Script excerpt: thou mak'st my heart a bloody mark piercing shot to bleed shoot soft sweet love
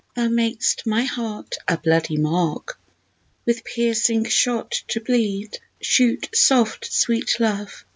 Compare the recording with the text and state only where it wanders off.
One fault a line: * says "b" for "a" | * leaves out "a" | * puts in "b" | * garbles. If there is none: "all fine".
* puts in "with"